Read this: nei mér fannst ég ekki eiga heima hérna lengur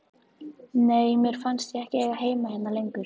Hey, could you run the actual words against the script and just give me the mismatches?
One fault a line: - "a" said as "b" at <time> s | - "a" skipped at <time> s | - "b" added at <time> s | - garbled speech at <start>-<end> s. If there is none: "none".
none